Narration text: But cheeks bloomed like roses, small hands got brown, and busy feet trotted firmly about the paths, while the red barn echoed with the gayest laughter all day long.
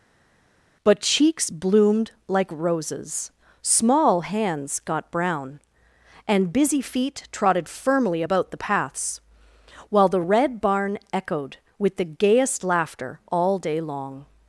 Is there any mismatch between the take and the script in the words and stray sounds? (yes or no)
no